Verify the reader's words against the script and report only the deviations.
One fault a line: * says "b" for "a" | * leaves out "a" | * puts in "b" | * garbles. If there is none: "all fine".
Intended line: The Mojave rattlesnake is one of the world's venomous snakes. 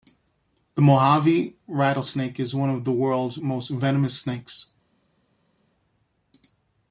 * puts in "most"